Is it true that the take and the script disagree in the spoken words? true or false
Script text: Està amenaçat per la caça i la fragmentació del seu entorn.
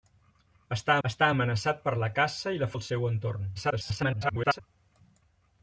true